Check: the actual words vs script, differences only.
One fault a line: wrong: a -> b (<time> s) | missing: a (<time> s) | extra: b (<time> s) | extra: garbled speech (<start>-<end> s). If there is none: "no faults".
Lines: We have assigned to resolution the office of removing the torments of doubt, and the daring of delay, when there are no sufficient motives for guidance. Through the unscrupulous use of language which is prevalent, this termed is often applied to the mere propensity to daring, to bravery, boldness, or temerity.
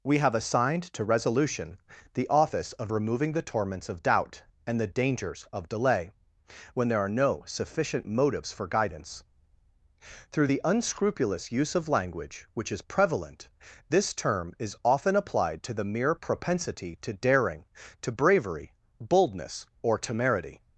wrong: daring -> dangers (4.9 s)
wrong: termed -> term (14.1 s)